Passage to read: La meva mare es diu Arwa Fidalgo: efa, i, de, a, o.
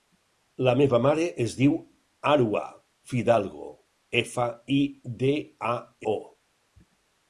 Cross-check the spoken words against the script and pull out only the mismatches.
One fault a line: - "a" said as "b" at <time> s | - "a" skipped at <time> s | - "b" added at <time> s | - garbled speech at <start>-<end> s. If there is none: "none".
none